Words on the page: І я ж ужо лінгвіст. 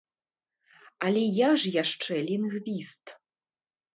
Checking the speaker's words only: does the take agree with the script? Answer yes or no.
no